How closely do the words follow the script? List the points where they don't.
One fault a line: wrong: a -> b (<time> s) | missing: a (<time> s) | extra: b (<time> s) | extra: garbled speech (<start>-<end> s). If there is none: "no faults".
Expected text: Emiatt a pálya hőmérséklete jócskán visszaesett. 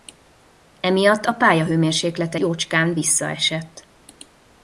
no faults